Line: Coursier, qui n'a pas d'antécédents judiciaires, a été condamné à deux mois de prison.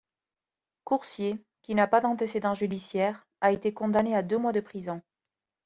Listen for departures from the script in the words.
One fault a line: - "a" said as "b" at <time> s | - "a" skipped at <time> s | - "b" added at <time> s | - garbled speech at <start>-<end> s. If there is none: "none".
none